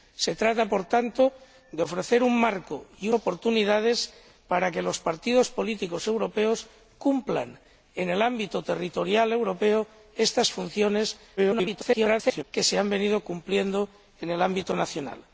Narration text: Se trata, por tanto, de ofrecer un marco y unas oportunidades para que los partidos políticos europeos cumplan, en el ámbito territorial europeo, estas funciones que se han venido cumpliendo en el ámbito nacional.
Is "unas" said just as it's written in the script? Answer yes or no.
no